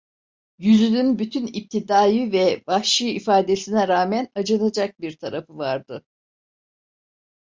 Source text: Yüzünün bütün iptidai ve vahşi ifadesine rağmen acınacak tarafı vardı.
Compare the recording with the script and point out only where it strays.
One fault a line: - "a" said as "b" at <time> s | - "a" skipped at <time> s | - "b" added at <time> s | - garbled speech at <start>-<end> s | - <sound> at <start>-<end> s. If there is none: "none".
- "bir" added at 5.0 s